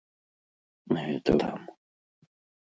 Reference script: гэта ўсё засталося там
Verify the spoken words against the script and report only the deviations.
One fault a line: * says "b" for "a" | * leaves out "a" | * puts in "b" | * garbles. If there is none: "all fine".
* leaves out "ўсё засталося"